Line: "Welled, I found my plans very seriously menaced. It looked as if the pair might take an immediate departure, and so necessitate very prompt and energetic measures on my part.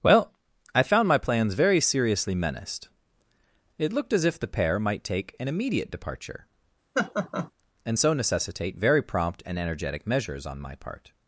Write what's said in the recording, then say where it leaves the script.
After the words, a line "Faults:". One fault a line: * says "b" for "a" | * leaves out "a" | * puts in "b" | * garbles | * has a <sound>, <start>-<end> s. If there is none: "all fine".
"Well, I found my plans very seriously menaced. It looked as if the pair might take an immediate departure, and so necessitate very prompt and energetic measures on my part.
Faults:
* says "Well" for "Welled"
* has a laugh, 6.9-7.5 s